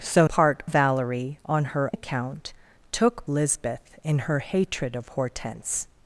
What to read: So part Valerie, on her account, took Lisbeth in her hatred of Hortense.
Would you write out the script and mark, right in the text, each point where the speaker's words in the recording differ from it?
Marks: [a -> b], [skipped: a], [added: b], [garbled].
So part Valerie, on her account, took Lisbeth in her hatred of Hortense.